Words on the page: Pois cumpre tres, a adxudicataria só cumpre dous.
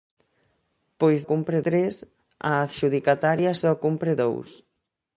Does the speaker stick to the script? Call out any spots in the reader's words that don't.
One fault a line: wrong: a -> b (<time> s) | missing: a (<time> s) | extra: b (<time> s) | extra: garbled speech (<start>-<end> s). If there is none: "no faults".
no faults